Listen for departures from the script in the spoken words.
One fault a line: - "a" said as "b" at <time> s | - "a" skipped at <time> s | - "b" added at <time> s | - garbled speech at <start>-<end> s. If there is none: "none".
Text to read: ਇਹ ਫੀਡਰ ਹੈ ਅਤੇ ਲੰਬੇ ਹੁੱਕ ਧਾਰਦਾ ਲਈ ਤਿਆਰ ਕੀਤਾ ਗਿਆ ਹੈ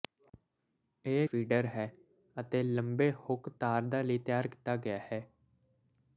none